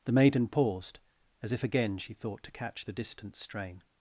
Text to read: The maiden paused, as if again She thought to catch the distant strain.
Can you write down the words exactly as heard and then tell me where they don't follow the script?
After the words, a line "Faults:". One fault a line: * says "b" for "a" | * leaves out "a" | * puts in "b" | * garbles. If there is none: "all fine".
The maiden paused, as if again She thought to catch the distant strain.
Faults:
all fine